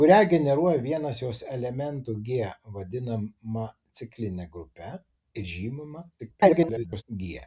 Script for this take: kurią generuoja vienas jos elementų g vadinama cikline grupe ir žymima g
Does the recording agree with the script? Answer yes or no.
no